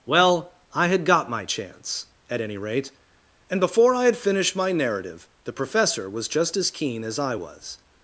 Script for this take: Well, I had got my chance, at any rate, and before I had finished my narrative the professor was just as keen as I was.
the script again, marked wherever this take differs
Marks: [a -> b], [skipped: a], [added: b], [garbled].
Well, I had got my chance, at any rate, and before I had finished my narrative the professor was just as keen as I was.